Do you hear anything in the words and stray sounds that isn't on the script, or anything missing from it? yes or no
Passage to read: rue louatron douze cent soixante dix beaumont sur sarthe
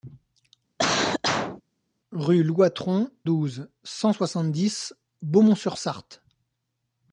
yes